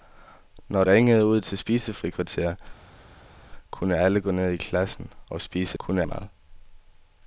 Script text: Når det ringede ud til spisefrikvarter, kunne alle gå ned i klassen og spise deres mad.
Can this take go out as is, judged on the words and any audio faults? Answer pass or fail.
fail